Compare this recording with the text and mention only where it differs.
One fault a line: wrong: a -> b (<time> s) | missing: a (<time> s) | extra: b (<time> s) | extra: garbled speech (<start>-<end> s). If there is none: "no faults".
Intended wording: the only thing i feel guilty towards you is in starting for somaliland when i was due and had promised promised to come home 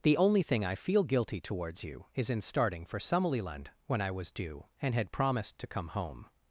missing: promised (5.6 s)